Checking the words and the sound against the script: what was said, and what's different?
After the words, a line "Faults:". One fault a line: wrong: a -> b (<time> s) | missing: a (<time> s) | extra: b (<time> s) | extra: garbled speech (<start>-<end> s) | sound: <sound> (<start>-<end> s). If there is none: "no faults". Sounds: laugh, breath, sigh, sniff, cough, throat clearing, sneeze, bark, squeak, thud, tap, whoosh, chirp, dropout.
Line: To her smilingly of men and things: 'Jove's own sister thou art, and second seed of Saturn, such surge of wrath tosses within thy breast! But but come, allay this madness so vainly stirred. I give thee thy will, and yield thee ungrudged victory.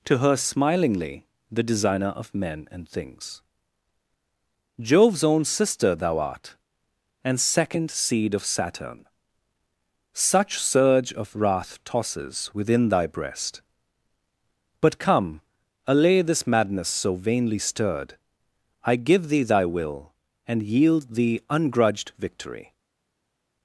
To her smilingly the designer of men and things: 'Jove's own sister thou art, and second seed of Saturn, such surge of wrath tosses within thy breast! But come, allay this madness so vainly stirred. I give thee thy will, and yield thee ungrudged victory.
Faults:
extra: the designer (1.5 s)
missing: but (15.0 s)